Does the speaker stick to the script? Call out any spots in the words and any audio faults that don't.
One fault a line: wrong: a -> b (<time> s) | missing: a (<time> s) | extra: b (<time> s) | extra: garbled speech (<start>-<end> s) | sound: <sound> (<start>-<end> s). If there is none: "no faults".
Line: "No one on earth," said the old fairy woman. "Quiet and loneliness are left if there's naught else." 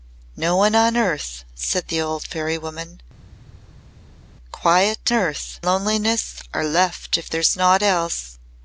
wrong: and -> earth (5.1 s)